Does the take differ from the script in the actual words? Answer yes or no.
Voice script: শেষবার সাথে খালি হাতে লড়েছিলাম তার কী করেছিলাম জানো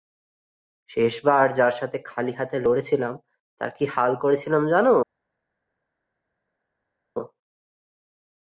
yes